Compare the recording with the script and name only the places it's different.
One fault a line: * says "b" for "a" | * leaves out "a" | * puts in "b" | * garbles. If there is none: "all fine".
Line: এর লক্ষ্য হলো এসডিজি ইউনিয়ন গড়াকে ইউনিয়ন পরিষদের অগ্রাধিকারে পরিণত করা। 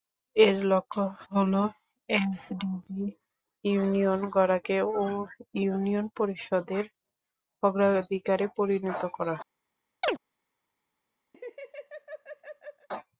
all fine